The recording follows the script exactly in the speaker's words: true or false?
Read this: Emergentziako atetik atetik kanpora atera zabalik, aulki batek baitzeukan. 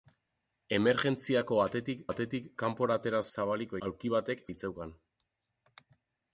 true